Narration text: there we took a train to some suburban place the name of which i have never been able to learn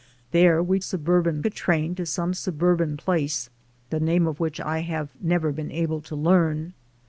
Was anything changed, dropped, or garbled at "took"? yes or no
yes